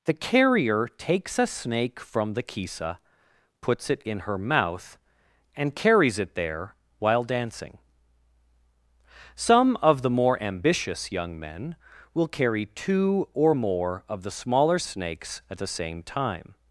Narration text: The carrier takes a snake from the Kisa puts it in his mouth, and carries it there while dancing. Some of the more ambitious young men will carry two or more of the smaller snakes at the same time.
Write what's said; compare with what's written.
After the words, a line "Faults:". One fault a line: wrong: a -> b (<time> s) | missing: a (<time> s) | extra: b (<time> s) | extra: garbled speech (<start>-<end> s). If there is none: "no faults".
The carrier takes a snake from the Kisa puts it in her mouth, and carries it there while dancing. Some of the more ambitious young men will carry two or more of the smaller snakes at the same time.
Faults:
wrong: his -> her (4.2 s)